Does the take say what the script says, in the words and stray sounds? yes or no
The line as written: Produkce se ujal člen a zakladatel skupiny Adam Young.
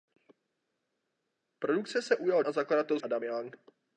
no